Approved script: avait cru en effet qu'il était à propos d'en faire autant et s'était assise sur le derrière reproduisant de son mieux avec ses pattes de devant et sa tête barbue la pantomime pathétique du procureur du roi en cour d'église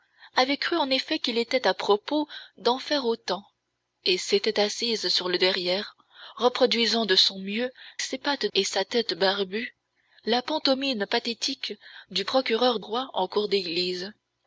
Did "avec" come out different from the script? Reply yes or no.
yes